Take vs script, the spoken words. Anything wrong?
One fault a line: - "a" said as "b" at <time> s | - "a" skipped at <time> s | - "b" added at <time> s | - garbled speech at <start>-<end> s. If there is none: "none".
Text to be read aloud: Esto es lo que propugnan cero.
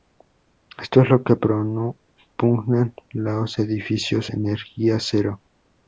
- "los edificios energía" added at 3.1 s